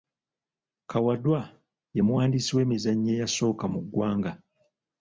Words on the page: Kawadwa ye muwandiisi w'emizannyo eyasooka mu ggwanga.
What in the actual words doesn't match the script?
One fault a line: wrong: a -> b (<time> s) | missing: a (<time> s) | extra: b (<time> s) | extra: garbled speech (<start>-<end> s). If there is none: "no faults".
no faults